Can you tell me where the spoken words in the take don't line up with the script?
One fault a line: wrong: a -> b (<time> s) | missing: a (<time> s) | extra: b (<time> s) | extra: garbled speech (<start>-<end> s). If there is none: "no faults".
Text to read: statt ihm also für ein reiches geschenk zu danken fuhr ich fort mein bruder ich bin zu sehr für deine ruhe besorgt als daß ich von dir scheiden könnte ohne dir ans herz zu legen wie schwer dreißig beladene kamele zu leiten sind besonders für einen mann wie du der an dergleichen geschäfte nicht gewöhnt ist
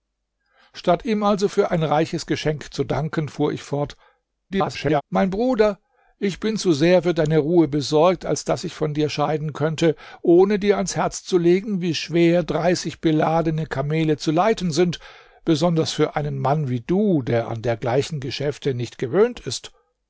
extra: garbled speech (4.5-5.0 s)